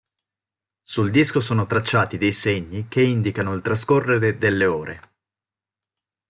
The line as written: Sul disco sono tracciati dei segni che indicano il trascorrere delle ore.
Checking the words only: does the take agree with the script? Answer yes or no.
yes